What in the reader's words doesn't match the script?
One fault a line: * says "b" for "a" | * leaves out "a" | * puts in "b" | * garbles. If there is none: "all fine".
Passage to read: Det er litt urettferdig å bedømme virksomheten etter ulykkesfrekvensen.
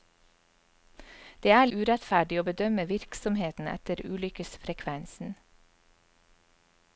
* leaves out "litt"